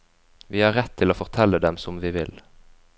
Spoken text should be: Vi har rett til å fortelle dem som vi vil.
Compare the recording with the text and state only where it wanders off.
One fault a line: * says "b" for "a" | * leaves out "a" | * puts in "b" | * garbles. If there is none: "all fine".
all fine